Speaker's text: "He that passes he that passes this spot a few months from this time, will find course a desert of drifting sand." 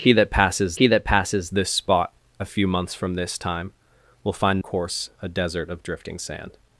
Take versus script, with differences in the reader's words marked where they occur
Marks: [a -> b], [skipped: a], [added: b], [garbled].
"He that passes he that passes this spot a few months from this time, will find course a desert of drifting sand."